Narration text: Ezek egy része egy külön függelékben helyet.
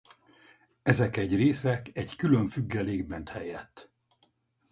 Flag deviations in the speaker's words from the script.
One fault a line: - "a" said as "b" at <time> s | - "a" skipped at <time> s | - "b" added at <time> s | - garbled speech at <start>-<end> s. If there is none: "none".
none